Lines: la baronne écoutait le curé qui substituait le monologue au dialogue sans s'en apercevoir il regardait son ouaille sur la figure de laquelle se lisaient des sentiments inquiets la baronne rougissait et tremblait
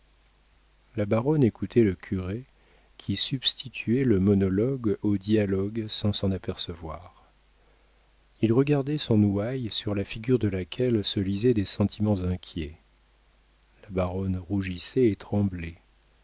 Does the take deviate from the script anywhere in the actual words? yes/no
no